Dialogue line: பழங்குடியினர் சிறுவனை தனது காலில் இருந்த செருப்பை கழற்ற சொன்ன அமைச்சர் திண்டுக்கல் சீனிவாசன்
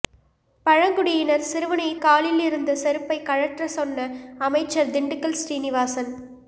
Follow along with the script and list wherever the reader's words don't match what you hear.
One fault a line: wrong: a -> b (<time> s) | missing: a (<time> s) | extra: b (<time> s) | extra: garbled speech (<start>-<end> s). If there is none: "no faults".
missing: தனது (1.9 s)